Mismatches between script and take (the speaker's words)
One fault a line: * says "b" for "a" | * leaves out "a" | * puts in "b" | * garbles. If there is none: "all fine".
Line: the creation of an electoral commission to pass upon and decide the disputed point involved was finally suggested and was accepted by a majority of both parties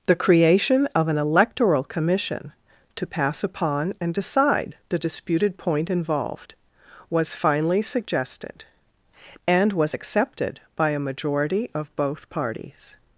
all fine